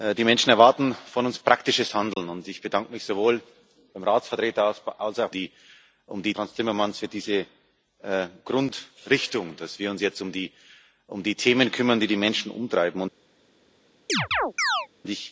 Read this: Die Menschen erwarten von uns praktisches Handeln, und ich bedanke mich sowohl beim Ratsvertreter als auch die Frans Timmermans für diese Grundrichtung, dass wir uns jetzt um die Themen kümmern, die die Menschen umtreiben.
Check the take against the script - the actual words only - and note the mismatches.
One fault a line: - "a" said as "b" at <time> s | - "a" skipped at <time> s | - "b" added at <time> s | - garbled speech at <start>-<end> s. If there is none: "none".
none